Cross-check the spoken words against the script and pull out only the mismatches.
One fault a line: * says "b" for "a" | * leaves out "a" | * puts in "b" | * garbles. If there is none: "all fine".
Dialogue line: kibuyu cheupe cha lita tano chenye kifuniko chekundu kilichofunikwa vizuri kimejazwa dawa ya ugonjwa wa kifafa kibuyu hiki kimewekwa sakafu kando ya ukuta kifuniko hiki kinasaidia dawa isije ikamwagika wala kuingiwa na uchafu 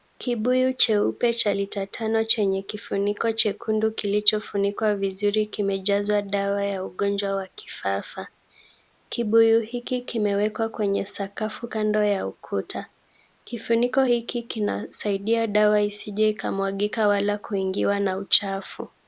* puts in "kwenye"